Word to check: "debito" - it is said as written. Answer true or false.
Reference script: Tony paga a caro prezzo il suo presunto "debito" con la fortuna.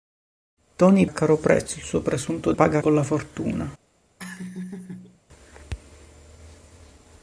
false